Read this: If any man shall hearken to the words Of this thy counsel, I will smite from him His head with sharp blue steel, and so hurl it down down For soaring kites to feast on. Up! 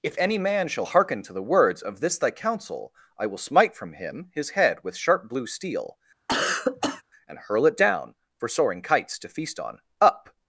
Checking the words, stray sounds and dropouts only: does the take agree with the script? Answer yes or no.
no